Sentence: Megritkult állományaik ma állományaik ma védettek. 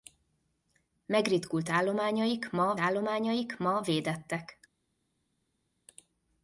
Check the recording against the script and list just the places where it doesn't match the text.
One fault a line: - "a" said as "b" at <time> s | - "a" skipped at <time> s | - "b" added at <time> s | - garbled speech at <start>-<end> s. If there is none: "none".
none